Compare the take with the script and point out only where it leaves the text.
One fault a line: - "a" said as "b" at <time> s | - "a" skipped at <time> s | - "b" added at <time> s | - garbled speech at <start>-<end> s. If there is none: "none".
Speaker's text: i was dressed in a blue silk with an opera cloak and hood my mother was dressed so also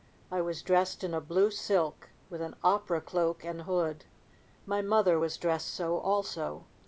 none